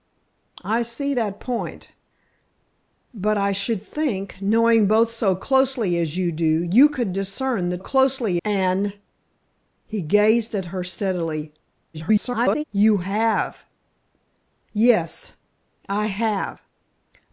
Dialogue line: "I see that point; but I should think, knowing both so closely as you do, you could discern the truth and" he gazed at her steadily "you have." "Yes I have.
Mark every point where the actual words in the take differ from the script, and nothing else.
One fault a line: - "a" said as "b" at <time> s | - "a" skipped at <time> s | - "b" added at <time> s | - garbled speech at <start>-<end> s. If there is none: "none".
- "truth" said as "closely" at 7.8 s
- garbled speech at 11.9-12.6 s